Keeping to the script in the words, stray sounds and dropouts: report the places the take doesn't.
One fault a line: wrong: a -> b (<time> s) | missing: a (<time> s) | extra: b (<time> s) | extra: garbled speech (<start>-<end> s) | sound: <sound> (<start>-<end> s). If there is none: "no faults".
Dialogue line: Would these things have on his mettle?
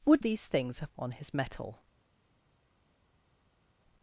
no faults